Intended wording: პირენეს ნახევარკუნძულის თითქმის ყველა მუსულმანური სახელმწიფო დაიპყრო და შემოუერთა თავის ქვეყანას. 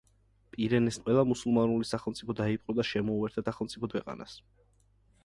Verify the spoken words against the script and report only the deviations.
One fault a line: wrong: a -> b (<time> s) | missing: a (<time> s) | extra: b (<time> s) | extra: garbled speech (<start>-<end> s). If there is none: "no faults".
missing: ნახევარკუნძულის თითქმის (0.9 s)
wrong: თავის -> სახელმწიფო (3.4 s)